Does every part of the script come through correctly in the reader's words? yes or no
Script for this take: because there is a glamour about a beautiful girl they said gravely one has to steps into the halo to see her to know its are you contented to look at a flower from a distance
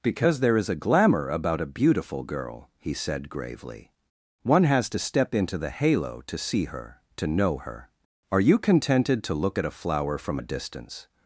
no